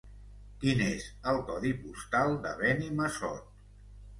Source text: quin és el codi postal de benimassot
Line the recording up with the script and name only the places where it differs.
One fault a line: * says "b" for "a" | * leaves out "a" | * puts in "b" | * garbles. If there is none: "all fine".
all fine